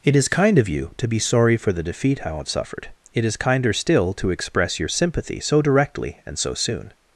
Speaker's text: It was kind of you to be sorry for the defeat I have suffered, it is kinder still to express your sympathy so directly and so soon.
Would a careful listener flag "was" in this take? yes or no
yes